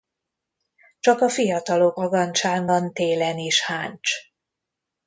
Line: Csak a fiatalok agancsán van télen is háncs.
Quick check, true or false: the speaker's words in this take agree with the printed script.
true